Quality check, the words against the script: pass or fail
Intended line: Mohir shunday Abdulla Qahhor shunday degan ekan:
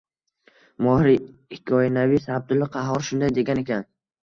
fail